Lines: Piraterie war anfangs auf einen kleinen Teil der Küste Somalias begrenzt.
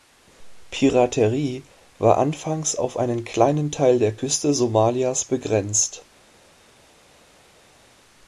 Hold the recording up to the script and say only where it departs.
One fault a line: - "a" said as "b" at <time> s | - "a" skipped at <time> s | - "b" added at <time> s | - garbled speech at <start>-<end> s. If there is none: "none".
none